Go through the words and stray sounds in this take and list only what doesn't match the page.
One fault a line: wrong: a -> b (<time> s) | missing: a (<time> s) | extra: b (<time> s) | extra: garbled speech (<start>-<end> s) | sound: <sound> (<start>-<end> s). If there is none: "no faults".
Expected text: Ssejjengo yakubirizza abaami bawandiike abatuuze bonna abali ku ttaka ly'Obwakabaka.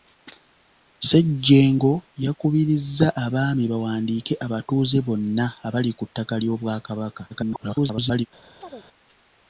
extra: garbled speech (7.3-8.3 s)
sound: chirp (8.6-8.9 s)